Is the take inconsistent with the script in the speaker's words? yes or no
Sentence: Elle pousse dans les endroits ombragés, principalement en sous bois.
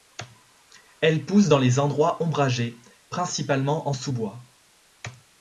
no